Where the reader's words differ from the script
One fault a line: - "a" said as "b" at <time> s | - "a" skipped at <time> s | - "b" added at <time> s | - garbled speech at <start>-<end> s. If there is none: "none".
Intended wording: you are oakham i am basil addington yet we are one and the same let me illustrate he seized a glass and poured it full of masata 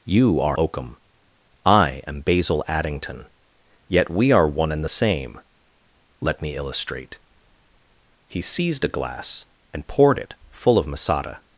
none